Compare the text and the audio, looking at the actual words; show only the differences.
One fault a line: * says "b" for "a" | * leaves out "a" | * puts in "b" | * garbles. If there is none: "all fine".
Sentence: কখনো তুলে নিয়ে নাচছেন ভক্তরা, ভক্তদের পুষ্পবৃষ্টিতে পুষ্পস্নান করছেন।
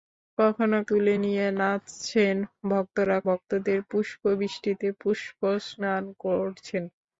all fine